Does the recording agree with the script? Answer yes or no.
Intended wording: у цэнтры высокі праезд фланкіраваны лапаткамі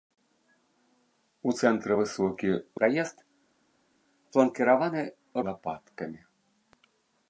yes